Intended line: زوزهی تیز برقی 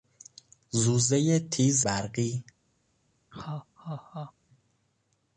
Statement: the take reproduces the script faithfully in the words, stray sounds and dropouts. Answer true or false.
false